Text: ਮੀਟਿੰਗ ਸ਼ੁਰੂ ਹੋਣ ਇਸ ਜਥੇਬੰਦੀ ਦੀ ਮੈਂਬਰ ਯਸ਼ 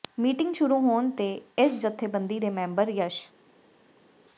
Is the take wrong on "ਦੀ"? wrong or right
wrong